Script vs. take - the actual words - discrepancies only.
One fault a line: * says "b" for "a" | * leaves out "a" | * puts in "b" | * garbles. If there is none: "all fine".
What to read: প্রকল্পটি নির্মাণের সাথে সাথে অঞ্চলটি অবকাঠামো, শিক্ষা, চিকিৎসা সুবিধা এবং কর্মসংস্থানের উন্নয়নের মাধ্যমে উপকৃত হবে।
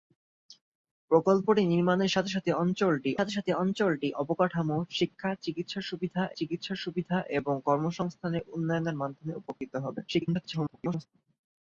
* puts in "সাথে সাথে অঞ্চলটি"
* puts in "চিকিৎসা সুবিধা"
* garbles